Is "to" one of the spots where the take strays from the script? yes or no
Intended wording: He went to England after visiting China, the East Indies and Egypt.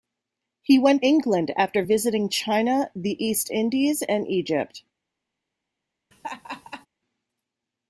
yes